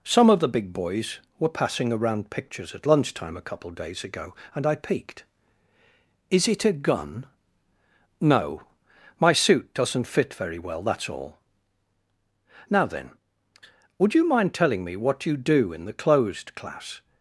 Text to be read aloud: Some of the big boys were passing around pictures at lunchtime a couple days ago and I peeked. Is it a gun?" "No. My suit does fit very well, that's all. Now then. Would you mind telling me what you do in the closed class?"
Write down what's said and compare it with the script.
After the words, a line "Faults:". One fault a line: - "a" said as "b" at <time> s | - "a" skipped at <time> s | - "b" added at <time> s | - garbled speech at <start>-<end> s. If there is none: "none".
Some of the big boys were passing around pictures at lunchtime a couple days ago and I peeked. Is it a gun?" "No. My suit doesn't fit very well, that's all. Now then. Would you mind telling me what you do in the closed class?"
Faults:
- "does" said as "doesn't" at 9.7 s